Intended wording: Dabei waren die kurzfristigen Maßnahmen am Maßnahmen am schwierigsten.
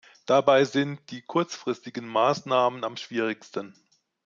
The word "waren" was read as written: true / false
false